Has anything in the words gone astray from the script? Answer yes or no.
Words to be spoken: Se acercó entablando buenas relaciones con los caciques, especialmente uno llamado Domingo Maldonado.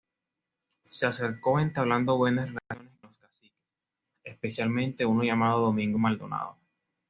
yes